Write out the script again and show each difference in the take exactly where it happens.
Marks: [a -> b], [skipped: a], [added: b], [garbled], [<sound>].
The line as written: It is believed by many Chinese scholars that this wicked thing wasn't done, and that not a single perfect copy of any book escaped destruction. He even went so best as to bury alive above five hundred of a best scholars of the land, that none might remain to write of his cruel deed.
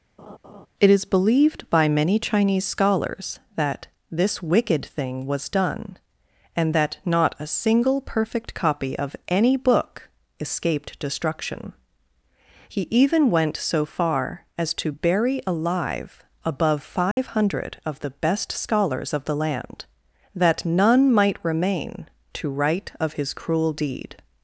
[laugh] It is believed by many Chinese scholars that this wicked thing [wasn't -> was] done, and that not a single perfect copy of any book escaped destruction. He even went so [best -> far] as to bury alive above five [dropout] hundred of [a -> the] best scholars of the land, that none might remain to write of his cruel deed.